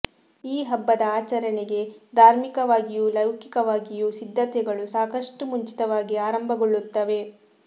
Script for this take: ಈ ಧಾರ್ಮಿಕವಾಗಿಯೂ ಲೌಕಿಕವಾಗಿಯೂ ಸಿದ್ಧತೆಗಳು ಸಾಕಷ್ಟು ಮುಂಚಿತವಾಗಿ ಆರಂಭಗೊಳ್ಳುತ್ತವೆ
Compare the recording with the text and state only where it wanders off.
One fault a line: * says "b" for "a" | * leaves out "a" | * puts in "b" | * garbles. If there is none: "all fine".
* puts in "ಹಬ್ಬದ ಆಚರಣೆಗೆ"